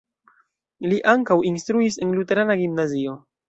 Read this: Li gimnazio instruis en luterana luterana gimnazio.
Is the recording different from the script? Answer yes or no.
yes